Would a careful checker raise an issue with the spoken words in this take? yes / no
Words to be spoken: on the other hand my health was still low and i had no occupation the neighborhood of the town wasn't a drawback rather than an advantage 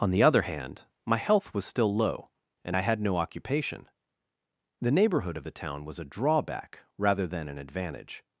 yes